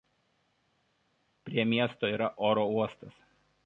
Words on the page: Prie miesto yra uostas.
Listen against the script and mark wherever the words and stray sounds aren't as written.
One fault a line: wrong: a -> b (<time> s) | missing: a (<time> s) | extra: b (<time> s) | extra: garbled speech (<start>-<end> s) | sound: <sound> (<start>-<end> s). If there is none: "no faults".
extra: oro (2.4 s)